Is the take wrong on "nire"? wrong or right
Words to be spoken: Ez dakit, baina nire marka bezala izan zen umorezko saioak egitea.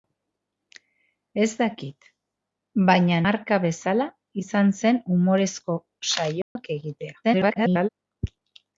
wrong